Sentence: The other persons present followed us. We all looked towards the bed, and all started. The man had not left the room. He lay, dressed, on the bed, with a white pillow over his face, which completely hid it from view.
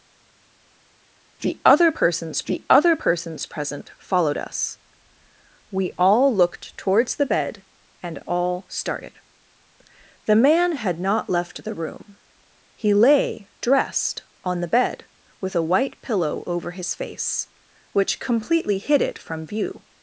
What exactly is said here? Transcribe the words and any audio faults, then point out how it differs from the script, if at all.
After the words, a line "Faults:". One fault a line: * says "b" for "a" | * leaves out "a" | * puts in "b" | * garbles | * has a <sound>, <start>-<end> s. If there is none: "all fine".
The other persons the other persons present followed us. We all looked towards the bed, and all started. The man had not left the room. He lay, dressed, on the bed, with a white pillow over his face, which completely hid it from view.
Faults:
* puts in "the other persons"